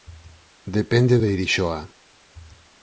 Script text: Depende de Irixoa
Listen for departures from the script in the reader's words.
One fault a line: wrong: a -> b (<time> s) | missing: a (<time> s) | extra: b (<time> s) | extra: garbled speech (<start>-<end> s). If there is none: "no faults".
no faults